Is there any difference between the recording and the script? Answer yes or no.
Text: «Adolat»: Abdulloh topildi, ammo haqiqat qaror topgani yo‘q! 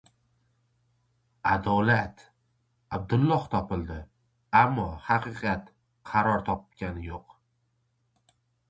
no